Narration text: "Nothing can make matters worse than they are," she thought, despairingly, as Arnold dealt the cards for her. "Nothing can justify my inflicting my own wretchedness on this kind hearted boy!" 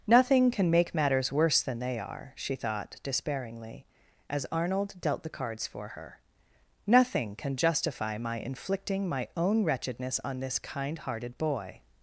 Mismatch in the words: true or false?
false